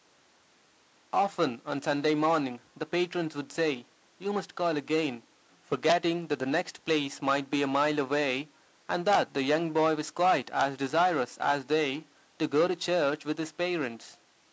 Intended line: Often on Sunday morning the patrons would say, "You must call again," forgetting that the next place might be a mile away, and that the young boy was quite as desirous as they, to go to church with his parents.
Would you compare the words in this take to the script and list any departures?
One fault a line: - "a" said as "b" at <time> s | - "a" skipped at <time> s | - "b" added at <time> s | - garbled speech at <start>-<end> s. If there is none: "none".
none